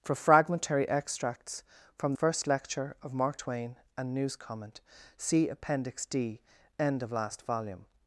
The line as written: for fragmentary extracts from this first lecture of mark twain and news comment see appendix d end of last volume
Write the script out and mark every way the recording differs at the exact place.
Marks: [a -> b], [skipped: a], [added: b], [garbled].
for fragmentary extracts from [skipped: this] first lecture of mark twain and news comment see appendix d end of last volume